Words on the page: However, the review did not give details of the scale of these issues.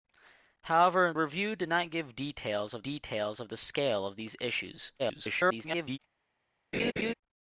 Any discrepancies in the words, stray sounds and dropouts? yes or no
yes